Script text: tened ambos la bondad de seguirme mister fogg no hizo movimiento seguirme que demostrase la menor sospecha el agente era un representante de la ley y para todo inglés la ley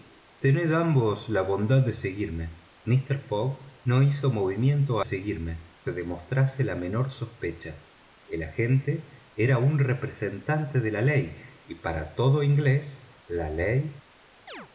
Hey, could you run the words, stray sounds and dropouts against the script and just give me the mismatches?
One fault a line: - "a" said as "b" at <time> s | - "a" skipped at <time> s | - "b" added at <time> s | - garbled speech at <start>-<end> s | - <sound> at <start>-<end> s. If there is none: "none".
- chirp at 14.5-14.7 s